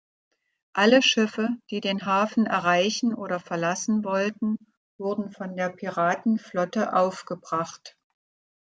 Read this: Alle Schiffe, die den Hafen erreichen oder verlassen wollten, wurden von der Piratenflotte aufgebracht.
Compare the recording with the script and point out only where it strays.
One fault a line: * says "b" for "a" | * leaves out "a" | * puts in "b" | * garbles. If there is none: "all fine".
all fine